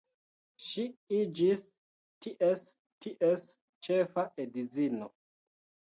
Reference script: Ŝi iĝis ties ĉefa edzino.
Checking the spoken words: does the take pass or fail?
fail